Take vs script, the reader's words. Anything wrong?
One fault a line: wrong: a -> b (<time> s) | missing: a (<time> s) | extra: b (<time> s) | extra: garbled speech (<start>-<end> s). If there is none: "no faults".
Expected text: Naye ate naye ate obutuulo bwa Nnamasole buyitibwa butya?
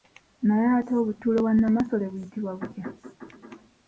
missing: naye ate (0.9 s)